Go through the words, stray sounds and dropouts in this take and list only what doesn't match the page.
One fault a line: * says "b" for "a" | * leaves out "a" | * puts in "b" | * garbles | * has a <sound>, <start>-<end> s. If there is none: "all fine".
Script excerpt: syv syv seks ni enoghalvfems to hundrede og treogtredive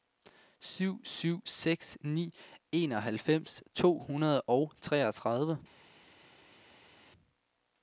all fine